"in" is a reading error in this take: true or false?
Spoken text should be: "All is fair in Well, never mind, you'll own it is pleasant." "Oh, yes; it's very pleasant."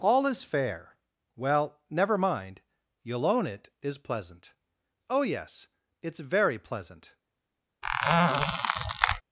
true